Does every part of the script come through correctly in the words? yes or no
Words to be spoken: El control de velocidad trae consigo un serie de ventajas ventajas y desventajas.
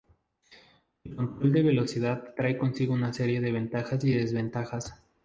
no